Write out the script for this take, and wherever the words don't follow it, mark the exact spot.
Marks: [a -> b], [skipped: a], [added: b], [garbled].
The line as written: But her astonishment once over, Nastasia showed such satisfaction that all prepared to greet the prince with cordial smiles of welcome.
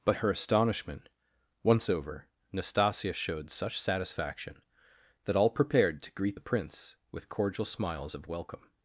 But her astonishment once over, Nastasia showed such satisfaction that all prepared to greet the prince with cordial smiles of welcome.